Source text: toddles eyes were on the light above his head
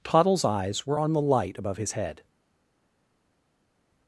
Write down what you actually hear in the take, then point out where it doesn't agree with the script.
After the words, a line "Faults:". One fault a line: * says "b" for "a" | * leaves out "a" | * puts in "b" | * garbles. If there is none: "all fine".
toddles eyes were on the light above his head
Faults:
all fine